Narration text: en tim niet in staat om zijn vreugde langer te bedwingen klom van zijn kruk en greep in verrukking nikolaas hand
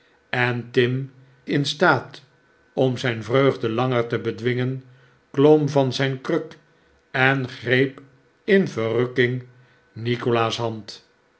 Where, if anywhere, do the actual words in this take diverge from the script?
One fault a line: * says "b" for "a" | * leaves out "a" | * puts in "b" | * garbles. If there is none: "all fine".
* leaves out "niet"